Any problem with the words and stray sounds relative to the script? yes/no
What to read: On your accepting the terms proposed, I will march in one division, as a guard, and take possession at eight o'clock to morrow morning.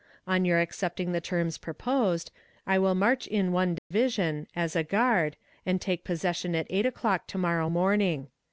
yes